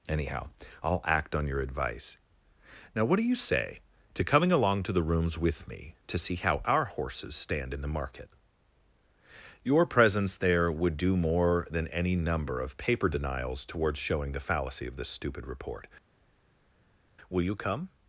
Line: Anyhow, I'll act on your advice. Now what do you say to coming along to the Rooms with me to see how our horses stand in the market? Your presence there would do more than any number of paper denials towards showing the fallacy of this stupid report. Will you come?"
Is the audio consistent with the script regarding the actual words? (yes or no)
yes